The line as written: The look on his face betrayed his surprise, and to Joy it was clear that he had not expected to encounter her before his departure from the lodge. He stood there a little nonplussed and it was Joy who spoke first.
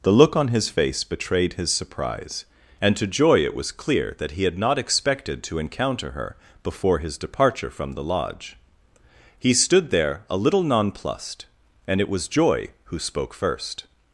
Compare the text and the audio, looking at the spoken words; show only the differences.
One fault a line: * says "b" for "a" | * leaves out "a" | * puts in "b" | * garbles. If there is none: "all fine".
all fine